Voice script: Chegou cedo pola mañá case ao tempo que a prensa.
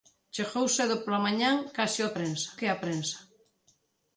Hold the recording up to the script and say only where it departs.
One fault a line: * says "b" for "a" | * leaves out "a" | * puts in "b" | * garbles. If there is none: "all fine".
* says "prensa" for "tempo"